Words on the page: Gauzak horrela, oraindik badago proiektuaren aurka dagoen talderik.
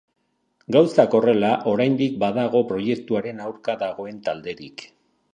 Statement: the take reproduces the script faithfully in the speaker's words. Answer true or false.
true